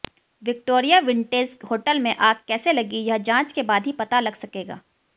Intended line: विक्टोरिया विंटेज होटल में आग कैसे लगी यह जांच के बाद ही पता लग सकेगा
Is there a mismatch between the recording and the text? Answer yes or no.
no